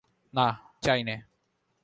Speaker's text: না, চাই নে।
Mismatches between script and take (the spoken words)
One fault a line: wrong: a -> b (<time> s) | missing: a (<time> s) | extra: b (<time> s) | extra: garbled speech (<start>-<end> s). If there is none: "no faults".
no faults